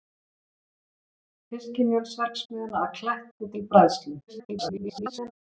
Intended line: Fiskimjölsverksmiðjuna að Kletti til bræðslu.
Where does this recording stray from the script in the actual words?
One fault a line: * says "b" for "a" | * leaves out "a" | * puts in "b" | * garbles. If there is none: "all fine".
* garbles